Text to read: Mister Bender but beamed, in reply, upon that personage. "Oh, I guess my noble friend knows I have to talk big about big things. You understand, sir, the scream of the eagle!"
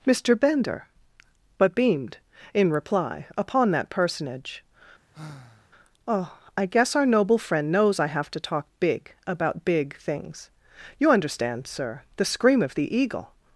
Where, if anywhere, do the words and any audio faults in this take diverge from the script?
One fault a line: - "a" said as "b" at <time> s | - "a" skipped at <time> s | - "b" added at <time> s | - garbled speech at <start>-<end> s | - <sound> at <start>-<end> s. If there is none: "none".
- sigh at 5.1-5.7 s
- "my" said as "our" at 6.9 s